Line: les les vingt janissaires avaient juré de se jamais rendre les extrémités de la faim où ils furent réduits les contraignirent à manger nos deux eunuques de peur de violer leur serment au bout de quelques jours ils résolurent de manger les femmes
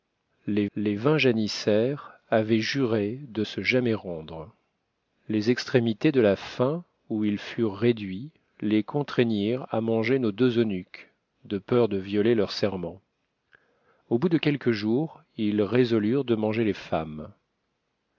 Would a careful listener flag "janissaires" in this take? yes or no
no